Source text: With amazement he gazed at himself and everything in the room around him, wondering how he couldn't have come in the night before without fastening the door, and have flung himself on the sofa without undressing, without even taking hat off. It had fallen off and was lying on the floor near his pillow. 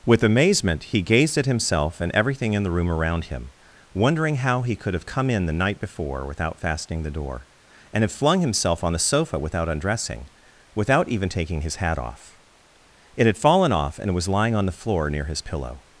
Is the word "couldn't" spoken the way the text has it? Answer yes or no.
no